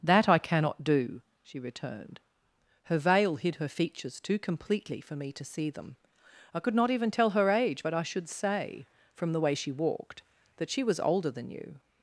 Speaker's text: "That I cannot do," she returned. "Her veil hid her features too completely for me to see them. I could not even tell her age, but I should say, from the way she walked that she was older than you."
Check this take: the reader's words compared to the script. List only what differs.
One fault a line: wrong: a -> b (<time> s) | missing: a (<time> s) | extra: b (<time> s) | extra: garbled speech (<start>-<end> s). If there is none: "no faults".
no faults